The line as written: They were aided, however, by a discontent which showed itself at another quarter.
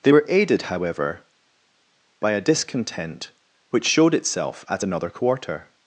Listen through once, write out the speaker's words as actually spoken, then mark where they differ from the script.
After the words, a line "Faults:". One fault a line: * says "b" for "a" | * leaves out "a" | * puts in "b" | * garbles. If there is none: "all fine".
They were aided, however, by a discontent which showed itself at another quarter.
Faults:
all fine